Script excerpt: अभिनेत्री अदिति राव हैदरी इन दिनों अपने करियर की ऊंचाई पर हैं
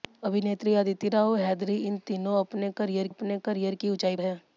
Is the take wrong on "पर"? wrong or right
wrong